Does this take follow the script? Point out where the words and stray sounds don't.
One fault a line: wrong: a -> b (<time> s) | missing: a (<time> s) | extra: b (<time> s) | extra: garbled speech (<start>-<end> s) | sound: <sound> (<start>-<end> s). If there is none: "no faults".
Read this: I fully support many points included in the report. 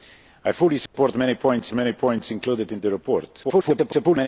sound: dropout (0.9-0.9 s)
extra: many points (1.7 s)
extra: garbled speech (3.4-4.3 s)